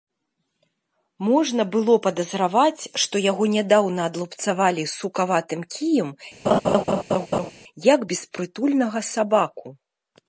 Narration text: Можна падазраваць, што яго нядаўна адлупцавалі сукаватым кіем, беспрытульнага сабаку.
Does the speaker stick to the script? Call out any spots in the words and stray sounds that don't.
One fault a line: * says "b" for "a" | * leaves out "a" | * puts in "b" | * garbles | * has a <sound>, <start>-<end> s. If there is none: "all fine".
* puts in "было"
* has a laugh, 6.4-7.5 s
* puts in "як"